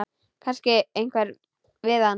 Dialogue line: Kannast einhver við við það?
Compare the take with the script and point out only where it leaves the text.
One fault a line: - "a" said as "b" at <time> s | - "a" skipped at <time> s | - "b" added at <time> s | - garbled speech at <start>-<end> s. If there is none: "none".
- "við" skipped at 2.0 s